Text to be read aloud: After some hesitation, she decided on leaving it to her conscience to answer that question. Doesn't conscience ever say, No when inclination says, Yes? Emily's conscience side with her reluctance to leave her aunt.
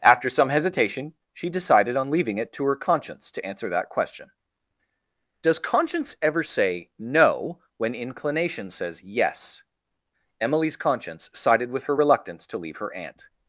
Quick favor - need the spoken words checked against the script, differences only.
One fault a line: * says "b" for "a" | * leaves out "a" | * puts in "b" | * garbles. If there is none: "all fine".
* says "Does" for "Doesn't"
* says "sided" for "side"